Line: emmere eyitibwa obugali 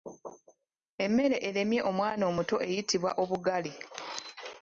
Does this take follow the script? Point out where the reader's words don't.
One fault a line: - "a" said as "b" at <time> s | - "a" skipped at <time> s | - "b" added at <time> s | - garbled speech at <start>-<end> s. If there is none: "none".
- "eremye omwana omuto" added at 1.5 s